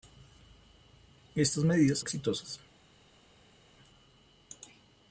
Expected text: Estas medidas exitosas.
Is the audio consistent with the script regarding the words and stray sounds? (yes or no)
yes